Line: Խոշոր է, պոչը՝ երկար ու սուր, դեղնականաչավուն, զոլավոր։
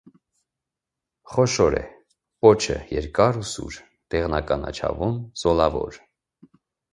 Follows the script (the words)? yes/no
yes